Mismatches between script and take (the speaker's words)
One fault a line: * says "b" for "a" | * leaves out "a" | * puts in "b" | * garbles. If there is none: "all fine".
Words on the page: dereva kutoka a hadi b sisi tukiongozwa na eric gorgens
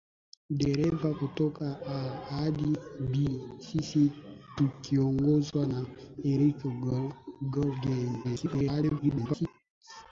* garbles